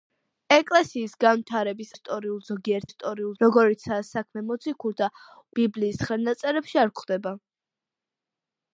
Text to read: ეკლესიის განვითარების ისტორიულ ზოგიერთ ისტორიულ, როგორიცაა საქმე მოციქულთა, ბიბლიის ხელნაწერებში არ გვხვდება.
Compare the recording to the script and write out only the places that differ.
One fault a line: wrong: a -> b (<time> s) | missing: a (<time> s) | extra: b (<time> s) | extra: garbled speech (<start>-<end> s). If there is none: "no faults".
no faults